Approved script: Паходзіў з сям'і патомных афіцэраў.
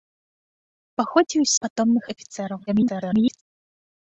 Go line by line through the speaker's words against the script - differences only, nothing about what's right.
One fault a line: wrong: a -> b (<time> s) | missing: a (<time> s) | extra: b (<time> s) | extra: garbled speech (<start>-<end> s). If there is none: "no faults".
missing: сям'і (1.5 s)
extra: garbled speech (2.7-3.4 s)